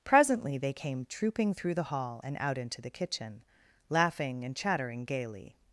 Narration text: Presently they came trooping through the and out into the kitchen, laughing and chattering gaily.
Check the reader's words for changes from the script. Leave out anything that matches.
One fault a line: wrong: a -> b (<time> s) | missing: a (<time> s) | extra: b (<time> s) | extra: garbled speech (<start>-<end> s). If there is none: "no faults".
extra: hall (1.8 s)